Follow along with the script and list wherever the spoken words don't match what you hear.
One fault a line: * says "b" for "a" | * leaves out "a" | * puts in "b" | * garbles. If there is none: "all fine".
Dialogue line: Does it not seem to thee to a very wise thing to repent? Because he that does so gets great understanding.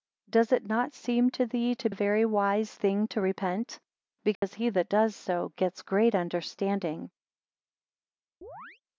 all fine